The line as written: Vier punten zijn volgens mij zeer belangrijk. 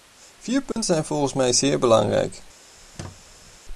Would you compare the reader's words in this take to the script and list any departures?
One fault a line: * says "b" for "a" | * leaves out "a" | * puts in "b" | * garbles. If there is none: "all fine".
all fine